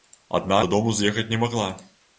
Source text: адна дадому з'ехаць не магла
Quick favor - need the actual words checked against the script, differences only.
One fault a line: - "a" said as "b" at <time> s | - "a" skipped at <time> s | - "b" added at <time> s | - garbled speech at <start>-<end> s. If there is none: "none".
none